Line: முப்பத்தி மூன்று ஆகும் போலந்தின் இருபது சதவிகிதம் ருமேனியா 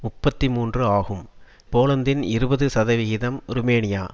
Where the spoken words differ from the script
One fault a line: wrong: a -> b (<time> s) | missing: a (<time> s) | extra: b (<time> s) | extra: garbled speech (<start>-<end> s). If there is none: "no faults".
no faults